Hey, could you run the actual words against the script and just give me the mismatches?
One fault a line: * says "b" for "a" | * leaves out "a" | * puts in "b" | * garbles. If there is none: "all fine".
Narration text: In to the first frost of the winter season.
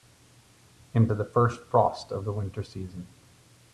all fine